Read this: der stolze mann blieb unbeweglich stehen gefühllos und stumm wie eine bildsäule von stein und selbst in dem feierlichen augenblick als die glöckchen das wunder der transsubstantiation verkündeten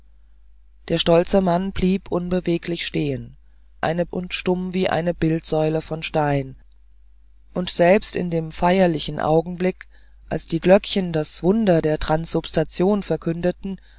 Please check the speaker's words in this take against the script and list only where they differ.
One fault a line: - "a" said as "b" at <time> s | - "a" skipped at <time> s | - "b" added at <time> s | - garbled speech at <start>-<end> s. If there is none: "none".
- "gefühllos" said as "eine" at 3.8 s